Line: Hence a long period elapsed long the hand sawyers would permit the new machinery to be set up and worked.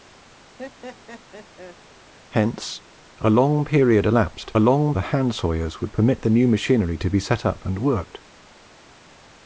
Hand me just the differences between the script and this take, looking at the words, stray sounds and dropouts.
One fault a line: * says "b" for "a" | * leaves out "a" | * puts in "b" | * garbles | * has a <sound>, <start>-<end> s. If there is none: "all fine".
* has a laugh, 0.6-1.8 s